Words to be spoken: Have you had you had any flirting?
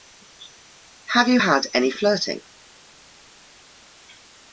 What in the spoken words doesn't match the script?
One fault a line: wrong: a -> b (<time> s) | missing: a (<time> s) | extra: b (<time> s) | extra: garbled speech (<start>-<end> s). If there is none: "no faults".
missing: you had (1.7 s)